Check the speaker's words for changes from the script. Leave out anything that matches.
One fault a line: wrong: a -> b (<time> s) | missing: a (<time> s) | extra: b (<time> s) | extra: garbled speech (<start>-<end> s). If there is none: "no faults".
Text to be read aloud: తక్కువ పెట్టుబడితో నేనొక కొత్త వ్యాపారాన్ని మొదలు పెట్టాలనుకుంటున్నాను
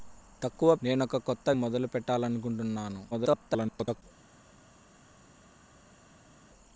missing: పెట్టుబడితో (0.8 s)
missing: వ్యాపారాన్ని (1.5 s)
extra: garbled speech (3.1-4.0 s)